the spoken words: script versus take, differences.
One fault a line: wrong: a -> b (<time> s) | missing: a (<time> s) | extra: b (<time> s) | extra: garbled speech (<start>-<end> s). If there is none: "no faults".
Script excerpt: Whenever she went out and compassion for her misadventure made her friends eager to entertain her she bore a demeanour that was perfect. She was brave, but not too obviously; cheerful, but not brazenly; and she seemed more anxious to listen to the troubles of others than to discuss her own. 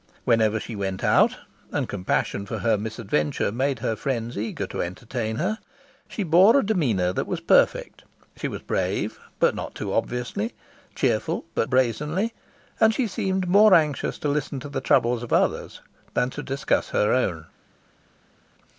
missing: not (11.7 s)